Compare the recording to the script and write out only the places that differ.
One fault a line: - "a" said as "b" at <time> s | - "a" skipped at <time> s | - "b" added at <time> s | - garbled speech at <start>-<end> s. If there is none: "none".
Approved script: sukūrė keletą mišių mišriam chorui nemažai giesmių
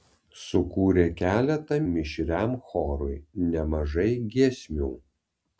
- "mišių" skipped at 1.8 s